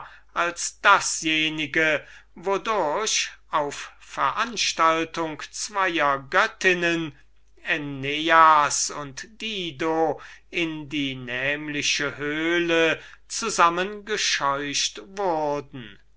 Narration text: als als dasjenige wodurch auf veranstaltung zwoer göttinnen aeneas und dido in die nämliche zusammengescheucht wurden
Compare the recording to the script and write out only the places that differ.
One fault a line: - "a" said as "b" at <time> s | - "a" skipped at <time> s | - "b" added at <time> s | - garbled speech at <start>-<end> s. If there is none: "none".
- "als" skipped at 0.8 s
- "höhle" added at 12.2 s